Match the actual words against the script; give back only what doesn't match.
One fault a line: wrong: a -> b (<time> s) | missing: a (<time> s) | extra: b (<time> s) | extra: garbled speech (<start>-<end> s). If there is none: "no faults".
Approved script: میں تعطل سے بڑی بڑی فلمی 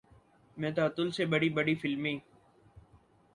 no faults